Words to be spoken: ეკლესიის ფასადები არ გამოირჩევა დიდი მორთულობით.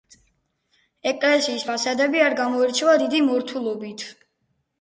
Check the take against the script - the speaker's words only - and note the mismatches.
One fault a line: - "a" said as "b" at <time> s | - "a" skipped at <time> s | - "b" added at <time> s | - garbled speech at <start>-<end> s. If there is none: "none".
none